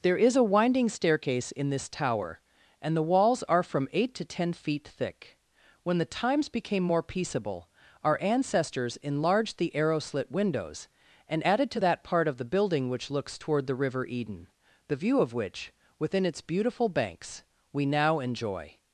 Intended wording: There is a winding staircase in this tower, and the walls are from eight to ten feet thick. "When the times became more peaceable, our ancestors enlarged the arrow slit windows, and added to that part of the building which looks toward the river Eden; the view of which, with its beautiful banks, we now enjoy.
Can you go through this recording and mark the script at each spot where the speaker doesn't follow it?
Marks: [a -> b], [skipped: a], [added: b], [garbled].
There is a winding staircase in this tower, and the walls are from eight to ten feet thick. "When the times became more peaceable, our ancestors enlarged the arrow slit windows, and added to that part of the building which looks toward the river Eden; the view of which, [with -> within] its beautiful banks, we now enjoy.